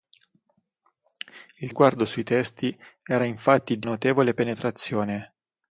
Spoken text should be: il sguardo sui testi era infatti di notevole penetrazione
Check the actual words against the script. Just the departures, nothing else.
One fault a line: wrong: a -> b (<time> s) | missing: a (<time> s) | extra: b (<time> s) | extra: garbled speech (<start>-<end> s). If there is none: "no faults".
no faults